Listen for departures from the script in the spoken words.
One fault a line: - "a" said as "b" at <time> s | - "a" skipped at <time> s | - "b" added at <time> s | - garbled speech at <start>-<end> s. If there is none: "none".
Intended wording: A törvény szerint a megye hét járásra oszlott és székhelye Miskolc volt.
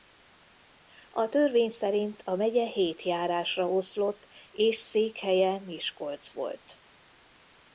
none